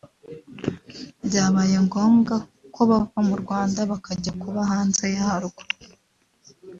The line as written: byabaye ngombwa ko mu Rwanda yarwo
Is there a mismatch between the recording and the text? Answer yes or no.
yes